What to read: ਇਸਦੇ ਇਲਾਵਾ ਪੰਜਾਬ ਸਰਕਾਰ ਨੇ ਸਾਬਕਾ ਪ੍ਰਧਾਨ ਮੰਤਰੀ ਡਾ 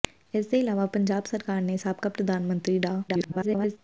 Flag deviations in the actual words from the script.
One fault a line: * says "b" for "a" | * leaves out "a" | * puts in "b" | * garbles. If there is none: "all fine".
* garbles